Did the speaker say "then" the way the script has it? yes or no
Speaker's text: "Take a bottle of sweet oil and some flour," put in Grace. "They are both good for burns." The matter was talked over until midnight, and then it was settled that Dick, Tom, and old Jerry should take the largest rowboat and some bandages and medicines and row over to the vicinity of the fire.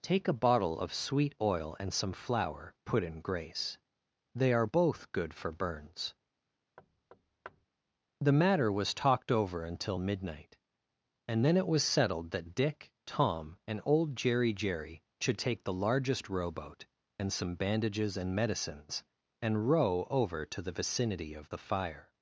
yes